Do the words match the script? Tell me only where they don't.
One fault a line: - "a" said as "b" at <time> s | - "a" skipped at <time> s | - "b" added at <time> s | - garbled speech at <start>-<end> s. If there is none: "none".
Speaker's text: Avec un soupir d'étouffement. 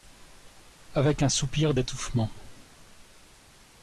none